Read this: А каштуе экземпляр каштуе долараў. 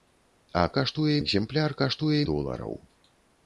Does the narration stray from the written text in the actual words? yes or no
no